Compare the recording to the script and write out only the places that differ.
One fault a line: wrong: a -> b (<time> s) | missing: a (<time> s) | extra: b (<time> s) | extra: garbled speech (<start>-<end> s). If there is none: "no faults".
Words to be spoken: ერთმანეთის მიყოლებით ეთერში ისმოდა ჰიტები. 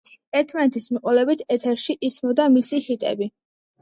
extra: მისი (2.6 s)